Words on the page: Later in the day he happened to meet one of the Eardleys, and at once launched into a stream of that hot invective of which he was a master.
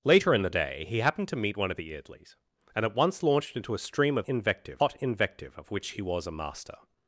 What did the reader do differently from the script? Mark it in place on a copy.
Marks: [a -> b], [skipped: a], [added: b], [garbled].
Later in the day he happened to meet one of the Eardleys, and at once launched into a stream of [that -> invective] hot invective of which he was a master.